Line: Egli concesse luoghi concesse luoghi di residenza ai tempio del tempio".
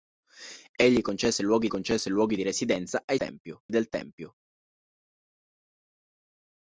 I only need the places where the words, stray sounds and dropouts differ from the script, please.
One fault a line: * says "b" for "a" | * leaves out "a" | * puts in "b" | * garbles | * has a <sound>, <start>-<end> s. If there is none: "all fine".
all fine